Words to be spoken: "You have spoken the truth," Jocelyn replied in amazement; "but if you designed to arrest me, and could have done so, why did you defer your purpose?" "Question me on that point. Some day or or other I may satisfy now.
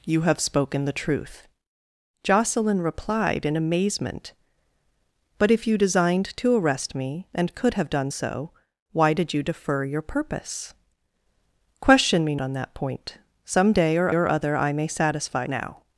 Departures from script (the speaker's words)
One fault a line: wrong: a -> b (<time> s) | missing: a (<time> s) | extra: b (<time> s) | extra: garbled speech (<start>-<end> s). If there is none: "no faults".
no faults